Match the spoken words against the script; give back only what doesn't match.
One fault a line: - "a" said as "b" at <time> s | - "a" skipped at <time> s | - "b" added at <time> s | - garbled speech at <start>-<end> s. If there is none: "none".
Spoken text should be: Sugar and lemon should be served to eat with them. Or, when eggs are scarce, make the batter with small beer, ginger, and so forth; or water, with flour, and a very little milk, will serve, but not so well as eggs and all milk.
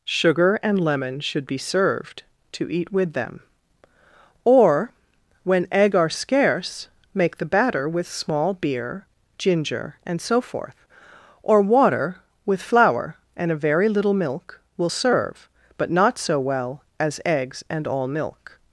- "eggs" said as "egg" at 5.7 s